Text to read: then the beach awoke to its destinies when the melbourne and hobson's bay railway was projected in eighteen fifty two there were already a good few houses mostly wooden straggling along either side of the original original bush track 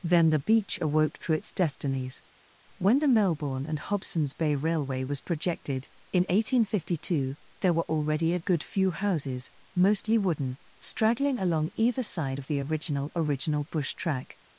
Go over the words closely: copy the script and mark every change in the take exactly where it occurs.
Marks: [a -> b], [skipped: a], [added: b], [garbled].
then the beach awoke to its destinies when the melbourne and hobson's bay railway was projected in eighteen fifty two there were already a good few houses mostly wooden straggling along either side of the original original bush track